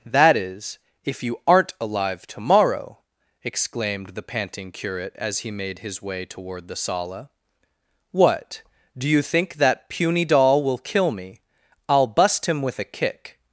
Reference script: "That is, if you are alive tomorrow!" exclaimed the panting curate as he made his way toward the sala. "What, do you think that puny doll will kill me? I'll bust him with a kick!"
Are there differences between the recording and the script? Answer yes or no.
yes